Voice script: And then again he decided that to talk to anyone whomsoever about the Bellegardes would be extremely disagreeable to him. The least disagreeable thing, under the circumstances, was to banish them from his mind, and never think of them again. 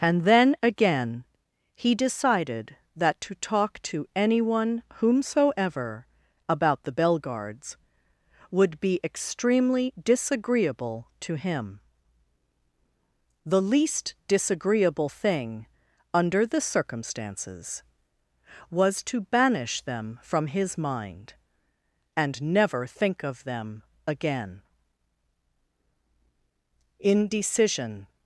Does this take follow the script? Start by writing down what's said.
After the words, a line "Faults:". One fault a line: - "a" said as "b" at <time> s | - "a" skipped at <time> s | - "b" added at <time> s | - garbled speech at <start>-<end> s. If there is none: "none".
And then again he decided that to talk to anyone whomsoever about the Bellegardes would be extremely disagreeable to him. The least disagreeable thing, under the circumstances, was to banish them from his mind, and never think of them again. Indecision
Faults:
- "Indecision" added at 27.0 s